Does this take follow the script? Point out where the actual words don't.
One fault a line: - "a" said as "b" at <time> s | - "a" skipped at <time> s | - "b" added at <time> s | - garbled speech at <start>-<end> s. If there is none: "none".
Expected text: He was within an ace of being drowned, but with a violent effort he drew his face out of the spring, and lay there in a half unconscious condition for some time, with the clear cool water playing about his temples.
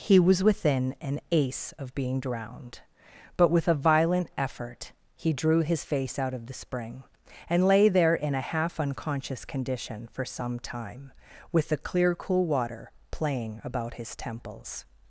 none